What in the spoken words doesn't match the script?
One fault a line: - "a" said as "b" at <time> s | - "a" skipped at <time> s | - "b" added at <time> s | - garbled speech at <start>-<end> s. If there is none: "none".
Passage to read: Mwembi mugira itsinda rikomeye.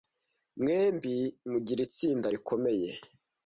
none